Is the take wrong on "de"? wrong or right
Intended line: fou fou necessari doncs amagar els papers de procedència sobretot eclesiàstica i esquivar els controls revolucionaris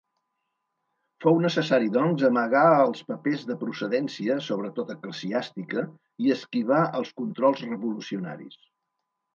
right